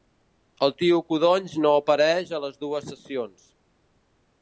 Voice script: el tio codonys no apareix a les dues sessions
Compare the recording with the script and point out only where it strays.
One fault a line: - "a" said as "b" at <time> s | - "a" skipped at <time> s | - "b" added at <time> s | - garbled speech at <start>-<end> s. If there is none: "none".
none